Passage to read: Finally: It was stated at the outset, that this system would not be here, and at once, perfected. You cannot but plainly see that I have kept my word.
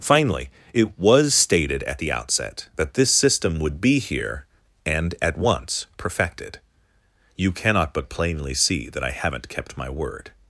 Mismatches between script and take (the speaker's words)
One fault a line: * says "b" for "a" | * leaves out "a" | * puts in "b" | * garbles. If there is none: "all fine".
* leaves out "not"
* says "haven't" for "have"